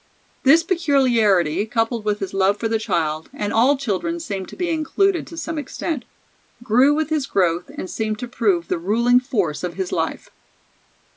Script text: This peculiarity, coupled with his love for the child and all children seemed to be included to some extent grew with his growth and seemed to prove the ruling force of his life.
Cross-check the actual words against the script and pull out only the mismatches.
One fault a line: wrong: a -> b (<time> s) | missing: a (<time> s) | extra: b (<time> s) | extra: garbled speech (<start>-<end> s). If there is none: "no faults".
no faults